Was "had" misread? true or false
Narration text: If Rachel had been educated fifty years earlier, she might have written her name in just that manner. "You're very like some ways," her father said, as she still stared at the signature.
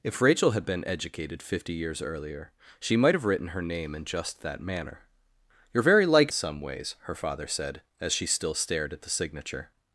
false